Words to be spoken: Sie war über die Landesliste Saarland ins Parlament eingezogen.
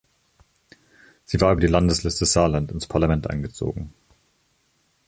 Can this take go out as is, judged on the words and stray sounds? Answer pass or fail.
pass